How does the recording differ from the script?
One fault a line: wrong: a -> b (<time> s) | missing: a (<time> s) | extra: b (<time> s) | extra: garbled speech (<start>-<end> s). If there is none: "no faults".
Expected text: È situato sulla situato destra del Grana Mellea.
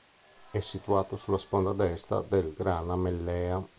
wrong: situato -> sponda (1.4 s)